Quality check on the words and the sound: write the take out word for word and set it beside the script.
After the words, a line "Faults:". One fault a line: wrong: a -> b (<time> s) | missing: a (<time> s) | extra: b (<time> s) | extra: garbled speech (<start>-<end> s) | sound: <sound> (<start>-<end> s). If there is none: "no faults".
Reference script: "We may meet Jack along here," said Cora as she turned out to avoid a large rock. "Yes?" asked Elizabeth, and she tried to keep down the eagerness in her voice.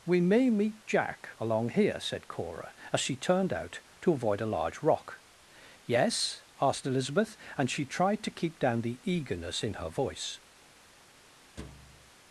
"We may meet Jack along here," said Cora as she turned out to avoid a large rock. "Yes?" asked Elizabeth, and she tried to keep down the eagerness in her voice.
Faults:
sound: thud (11.6-12.1 s)